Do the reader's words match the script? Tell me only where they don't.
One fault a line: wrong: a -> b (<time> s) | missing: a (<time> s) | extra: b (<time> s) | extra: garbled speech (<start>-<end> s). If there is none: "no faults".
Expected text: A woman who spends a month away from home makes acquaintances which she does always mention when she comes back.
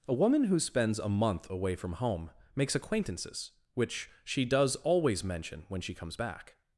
no faults